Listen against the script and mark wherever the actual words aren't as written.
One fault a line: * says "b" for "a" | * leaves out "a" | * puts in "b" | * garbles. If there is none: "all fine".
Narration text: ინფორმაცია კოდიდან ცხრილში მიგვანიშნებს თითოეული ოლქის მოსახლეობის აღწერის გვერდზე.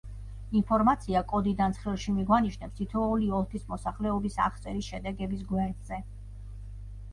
* puts in "შედეგების"